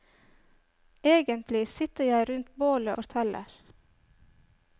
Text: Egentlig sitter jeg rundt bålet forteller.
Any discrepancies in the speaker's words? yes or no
no